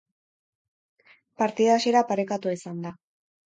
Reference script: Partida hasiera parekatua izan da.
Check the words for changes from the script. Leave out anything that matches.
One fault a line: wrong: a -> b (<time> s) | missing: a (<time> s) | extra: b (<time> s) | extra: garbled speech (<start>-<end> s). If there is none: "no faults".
no faults